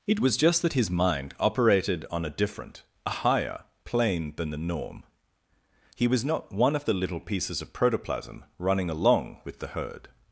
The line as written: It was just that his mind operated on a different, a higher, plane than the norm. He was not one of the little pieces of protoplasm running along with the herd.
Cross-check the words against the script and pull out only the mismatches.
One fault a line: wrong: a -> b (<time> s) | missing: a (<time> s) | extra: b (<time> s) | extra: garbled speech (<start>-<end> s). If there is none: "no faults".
no faults